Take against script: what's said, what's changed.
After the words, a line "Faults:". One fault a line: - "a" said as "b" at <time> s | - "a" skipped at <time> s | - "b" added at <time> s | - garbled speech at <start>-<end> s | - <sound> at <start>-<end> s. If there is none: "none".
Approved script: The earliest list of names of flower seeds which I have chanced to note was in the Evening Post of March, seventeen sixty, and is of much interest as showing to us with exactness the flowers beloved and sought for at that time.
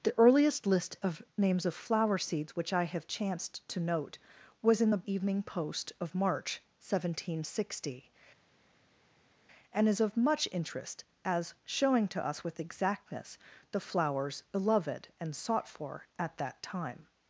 The earliest list of names of flower seeds which I have chanced to note was in the Evening Post of March, seventeen sixty, and is of much interest as showing to us with exactness the flowers beloved and sought for at that time.
Faults:
none